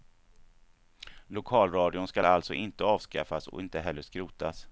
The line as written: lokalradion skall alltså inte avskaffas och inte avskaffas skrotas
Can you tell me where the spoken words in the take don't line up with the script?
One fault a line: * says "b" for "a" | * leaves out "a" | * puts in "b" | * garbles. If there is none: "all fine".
* says "heller" for "avskaffas"